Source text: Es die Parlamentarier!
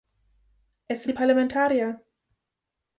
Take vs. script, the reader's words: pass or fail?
pass